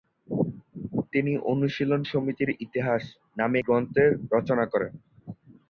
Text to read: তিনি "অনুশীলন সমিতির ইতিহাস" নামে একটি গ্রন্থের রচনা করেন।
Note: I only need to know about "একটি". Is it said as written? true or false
false